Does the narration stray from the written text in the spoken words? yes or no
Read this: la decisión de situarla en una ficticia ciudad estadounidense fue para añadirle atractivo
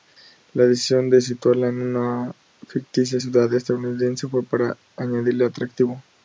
no